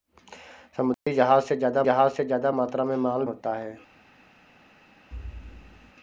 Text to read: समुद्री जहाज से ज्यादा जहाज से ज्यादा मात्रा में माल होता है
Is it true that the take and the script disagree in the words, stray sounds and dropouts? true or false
true